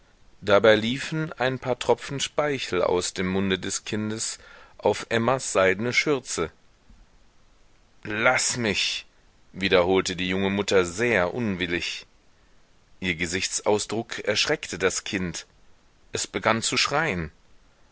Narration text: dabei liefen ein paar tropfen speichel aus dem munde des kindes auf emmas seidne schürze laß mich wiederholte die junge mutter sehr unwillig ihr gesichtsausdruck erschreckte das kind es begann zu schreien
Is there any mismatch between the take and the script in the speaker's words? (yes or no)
no